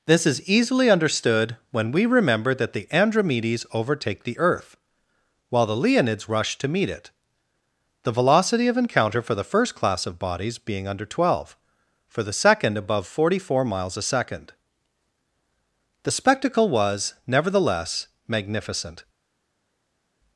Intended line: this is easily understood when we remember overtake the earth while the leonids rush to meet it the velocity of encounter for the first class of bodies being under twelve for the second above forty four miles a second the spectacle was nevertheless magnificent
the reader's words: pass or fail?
fail